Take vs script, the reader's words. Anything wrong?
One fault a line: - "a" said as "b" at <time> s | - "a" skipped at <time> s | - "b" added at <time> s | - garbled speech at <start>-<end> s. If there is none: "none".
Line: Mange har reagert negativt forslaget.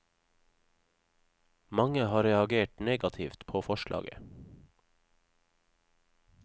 - "på" added at 3.5 s